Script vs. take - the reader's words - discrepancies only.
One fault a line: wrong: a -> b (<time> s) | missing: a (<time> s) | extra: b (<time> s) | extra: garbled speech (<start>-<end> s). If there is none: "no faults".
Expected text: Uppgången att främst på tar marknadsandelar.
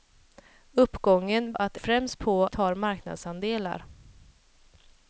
no faults